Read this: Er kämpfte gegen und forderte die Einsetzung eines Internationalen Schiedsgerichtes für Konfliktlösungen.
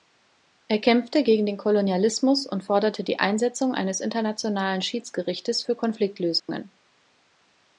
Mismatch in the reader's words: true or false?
true